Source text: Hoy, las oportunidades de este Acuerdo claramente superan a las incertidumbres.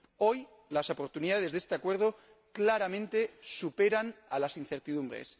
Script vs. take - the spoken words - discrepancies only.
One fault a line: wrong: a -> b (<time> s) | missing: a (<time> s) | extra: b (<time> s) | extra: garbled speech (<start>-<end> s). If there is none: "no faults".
no faults